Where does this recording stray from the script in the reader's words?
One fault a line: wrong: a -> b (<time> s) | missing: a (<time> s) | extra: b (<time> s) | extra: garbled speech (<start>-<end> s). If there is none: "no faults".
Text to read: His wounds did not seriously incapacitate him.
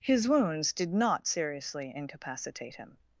no faults